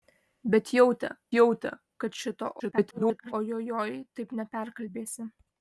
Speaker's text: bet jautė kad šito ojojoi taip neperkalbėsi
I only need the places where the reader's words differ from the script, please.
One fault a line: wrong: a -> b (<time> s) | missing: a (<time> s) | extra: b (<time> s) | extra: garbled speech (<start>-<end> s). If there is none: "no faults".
extra: jautė (1.4 s)
extra: garbled speech (2.6-3.3 s)